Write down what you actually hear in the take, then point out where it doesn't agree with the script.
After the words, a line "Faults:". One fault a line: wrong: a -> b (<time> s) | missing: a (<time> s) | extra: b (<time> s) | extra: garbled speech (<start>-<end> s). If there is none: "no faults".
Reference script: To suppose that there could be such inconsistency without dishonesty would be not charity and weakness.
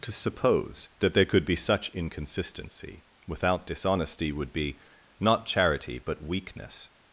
To suppose that there could be such inconsistency without dishonesty would be not charity but weakness.
Faults:
wrong: and -> but (6.0 s)